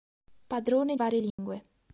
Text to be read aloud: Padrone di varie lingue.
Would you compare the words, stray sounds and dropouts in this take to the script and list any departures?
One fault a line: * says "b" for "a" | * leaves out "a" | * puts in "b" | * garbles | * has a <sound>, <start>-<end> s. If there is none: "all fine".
* leaves out "di"
* has a dropout, 1.3-1.4 s